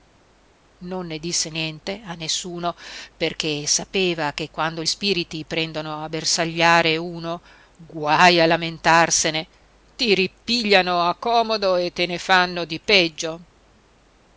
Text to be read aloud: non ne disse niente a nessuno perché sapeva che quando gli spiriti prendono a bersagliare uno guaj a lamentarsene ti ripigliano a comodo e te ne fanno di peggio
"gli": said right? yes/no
no